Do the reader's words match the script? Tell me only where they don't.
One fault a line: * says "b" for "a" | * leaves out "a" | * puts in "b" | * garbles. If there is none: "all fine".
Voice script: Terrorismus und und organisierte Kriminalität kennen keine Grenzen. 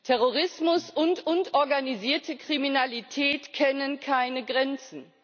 all fine